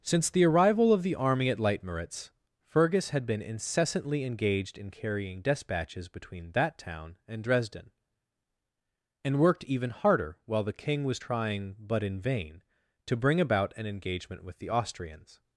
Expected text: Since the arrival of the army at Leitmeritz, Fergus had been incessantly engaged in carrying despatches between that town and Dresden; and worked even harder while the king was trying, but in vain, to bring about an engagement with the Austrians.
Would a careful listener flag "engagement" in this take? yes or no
no